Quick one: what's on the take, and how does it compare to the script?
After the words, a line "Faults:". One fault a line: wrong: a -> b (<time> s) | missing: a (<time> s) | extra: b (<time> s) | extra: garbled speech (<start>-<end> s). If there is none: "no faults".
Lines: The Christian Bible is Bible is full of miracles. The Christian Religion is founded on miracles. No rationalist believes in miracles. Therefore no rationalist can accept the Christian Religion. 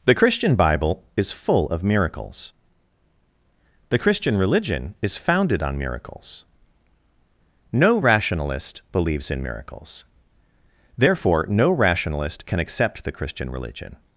The Christian Bible is full of miracles. The Christian Religion is founded on miracles. No rationalist believes in miracles. Therefore no rationalist can accept the Christian Religion.
Faults:
missing: Bible is (1.3 s)